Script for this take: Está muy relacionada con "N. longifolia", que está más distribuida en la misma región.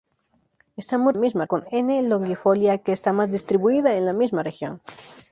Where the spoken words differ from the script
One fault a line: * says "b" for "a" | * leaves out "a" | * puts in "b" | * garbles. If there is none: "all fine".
* says "misma" for "relacionada"